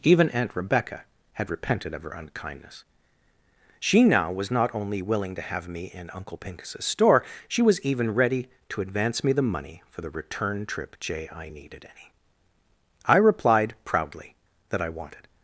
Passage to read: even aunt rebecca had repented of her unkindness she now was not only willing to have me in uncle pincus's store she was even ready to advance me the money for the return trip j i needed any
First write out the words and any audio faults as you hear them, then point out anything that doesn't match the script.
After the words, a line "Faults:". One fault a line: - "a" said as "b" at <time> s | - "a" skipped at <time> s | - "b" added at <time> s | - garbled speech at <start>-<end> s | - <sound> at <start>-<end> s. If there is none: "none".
even aunt rebecca had repented of her unkindness she now was not only willing to have me in uncle pincus's store she was even ready to advance me the money for the return trip j i needed any i replied proudly that i wanted
Faults:
- "i replied proudly that i wanted" added at 13.1 s